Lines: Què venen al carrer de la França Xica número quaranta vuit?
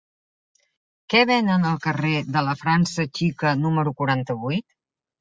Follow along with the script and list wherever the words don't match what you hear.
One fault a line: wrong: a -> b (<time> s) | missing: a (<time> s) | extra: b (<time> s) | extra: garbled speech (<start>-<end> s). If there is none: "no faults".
no faults